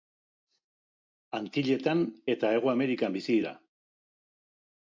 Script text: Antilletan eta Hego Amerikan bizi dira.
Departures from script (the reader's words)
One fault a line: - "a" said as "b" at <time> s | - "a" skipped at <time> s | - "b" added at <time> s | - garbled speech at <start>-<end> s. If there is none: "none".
none